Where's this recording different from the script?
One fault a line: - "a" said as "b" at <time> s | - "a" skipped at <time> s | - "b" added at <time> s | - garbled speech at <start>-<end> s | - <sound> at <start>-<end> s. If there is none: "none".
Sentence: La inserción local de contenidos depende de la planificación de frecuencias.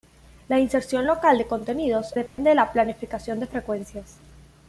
- dropout at 2.3-2.4 s